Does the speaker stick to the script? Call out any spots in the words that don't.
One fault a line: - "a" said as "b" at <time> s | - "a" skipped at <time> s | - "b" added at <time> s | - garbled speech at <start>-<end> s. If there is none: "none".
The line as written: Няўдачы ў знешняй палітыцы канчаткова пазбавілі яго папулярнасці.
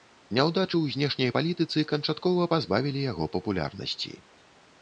none